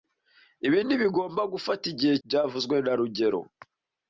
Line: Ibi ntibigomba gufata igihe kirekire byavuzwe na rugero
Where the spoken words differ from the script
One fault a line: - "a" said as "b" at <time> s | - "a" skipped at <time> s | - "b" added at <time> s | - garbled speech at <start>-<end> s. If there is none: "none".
- "kirekire" skipped at 2.1 s